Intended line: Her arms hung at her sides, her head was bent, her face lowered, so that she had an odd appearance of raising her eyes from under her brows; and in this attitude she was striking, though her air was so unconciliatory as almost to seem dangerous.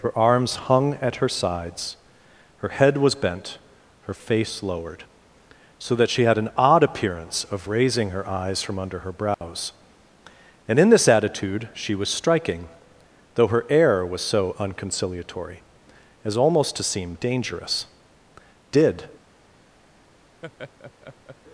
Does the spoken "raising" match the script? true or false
true